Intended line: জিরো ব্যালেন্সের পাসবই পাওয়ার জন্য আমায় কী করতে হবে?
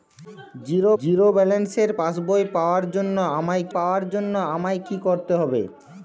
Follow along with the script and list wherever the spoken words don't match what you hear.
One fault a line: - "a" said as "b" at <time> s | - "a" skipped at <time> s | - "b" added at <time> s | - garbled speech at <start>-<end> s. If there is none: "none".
- "জিরো" added at 1.0 s
- "পাওয়ার জন্য আমায়" added at 3.7 s